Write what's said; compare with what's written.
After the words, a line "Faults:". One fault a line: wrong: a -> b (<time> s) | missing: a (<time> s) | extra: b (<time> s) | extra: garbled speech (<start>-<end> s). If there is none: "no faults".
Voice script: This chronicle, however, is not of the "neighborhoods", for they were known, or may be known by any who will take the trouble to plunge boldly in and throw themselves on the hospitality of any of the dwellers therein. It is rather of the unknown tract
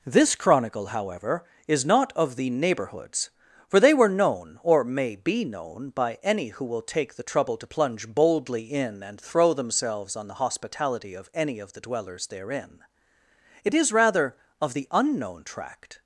This chronicle, however, is not of the "neighborhoods", for they were known, or may be known by any who will take the trouble to plunge boldly in and throw themselves on the hospitality of any of the dwellers therein. It is rather of the unknown tract
Faults:
no faults